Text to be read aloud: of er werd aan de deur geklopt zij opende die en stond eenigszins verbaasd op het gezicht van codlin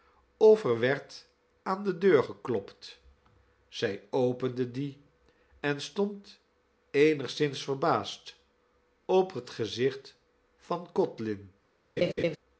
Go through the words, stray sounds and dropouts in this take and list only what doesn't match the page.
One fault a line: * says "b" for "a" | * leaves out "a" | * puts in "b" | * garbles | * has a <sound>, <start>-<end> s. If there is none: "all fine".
* has a laugh, 12.0-12.4 s